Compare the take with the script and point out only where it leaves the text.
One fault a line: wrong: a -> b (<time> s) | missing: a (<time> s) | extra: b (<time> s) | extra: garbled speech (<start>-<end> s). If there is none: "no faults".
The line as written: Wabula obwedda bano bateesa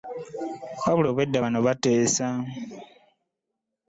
no faults